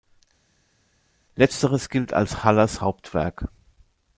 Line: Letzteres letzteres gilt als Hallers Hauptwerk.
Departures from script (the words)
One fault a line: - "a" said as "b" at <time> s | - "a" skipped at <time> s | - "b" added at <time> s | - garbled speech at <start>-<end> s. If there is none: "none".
- "letzteres" skipped at 1.9 s